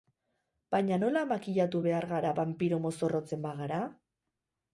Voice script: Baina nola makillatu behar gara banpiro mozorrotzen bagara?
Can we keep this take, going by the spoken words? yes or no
yes